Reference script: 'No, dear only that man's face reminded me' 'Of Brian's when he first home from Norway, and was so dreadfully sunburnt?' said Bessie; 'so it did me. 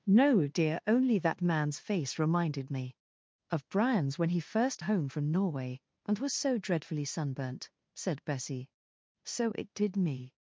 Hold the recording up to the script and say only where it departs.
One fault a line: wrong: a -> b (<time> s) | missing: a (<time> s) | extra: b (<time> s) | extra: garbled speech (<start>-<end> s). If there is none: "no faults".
no faults